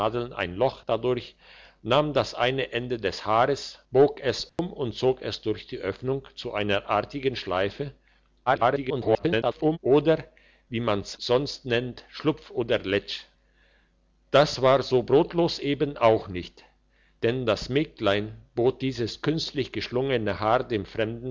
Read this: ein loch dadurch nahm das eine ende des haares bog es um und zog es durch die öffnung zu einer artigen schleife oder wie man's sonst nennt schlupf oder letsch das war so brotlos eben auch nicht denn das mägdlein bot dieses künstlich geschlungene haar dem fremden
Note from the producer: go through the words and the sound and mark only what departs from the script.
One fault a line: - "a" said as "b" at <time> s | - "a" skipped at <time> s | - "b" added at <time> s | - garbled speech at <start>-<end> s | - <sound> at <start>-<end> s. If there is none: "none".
- dropout at 4.5-4.6 s
- garbled speech at 8.5-9.8 s